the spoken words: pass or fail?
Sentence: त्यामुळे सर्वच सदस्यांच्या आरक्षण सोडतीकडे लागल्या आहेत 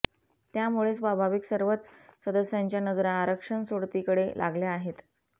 fail